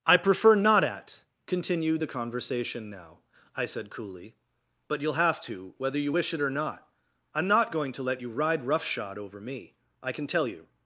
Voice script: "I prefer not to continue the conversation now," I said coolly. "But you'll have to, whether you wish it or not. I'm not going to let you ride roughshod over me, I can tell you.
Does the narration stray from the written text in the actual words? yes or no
yes